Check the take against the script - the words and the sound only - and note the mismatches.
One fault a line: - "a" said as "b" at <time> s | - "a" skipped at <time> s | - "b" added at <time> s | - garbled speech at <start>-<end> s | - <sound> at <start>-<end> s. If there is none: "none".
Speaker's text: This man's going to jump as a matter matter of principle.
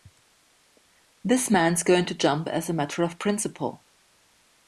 - "matter" skipped at 3.0 s